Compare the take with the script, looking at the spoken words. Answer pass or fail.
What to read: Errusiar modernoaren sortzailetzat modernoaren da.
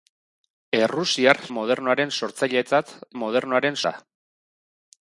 pass